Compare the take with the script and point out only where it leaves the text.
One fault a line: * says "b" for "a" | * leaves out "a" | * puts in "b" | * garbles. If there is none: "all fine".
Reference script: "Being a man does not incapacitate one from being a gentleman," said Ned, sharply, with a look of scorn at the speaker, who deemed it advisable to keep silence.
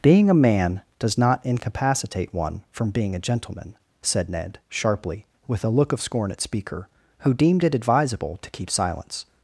* leaves out "the"